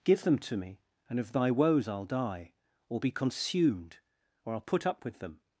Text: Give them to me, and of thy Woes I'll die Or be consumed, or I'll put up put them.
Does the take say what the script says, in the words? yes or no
no